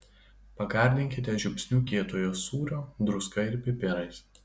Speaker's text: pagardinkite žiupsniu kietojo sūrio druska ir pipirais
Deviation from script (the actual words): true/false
false